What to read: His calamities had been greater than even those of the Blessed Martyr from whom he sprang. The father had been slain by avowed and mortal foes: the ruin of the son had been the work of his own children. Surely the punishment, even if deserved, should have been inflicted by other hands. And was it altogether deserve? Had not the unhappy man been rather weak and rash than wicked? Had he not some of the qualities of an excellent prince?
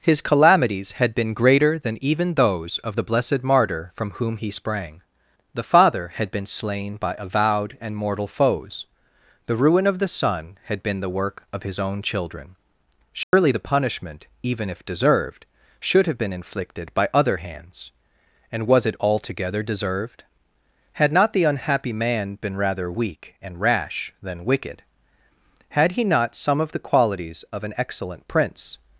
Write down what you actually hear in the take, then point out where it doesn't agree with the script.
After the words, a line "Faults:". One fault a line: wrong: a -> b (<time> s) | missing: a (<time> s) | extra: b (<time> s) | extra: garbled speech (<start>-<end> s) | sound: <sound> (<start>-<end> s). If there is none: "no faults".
His calamities had been greater than even those of the Blessed Martyr from whom he sprang. The father had been slain by avowed and mortal foes: the ruin of the son had been the work of his own children. Surely the punishment, even if deserved, should have been inflicted by other hands. And was it altogether deserved? Had not the unhappy man been rather weak and rash than wicked? Had he not some of the qualities of an excellent prince?
Faults:
sound: dropout (13.2-13.3 s)
wrong: deserve -> deserved (19.6 s)